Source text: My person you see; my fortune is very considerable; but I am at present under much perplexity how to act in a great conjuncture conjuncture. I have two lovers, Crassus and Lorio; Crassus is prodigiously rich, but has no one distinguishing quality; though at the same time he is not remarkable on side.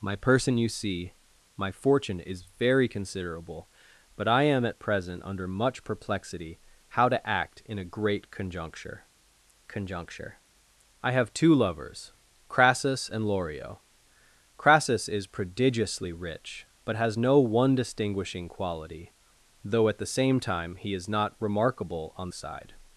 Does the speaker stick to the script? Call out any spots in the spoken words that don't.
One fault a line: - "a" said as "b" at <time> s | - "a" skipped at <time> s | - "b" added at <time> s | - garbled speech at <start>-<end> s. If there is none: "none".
none